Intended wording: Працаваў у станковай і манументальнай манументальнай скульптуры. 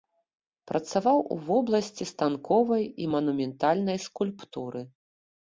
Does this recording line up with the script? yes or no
no